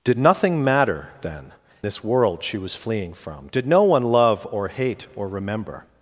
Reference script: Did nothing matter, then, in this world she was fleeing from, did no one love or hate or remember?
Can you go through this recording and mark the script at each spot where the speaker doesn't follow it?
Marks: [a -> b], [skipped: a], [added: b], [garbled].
Did nothing matter, then, [skipped: in] this world she was fleeing from, did no one love or hate or remember?